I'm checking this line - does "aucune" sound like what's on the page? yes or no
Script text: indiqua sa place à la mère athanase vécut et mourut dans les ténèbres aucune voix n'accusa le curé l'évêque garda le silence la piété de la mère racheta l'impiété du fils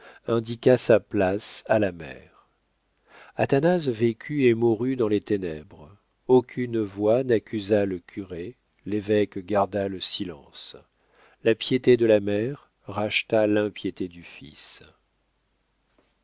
yes